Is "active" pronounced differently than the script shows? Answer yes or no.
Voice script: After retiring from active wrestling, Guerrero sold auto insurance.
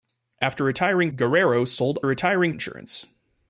yes